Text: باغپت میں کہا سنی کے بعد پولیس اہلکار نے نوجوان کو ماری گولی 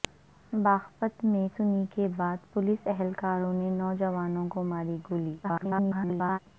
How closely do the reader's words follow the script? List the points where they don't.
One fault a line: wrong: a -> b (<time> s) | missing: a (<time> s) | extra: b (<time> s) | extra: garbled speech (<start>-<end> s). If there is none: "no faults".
missing: کہا (1.5 s)
extra: garbled speech (5.4-6.4 s)